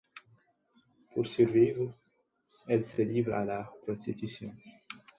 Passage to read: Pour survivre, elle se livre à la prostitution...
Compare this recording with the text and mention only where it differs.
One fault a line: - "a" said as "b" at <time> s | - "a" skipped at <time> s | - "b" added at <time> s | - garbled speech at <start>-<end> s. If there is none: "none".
none